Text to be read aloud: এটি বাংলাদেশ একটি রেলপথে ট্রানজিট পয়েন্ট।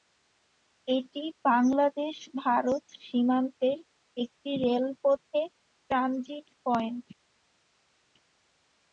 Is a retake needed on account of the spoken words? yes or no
yes